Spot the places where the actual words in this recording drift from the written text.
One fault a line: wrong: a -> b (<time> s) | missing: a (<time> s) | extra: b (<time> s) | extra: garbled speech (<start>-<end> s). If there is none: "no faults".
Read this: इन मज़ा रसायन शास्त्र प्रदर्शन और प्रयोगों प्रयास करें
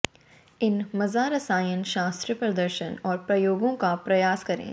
extra: का (3.7 s)